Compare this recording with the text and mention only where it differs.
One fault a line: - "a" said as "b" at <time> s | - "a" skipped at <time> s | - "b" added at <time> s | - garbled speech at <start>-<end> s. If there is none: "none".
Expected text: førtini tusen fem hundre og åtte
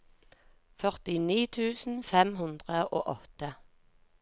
none